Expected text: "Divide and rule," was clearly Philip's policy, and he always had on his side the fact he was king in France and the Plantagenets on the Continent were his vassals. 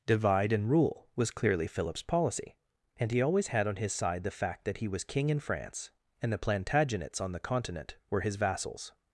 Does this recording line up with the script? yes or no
no